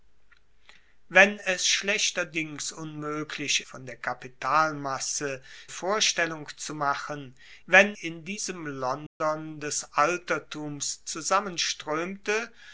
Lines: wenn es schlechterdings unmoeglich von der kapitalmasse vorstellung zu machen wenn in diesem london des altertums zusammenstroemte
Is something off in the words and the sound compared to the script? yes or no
yes